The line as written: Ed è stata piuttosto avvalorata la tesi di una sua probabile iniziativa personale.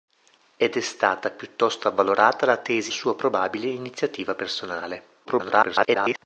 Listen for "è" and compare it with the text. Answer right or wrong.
right